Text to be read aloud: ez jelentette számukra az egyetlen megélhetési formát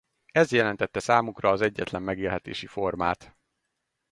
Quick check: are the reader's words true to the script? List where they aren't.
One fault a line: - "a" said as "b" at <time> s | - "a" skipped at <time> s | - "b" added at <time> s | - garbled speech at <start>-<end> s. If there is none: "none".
none